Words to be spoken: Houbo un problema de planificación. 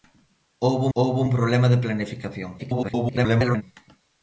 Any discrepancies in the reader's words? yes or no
yes